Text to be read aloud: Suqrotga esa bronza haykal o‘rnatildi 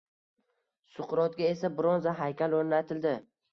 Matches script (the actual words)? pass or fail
pass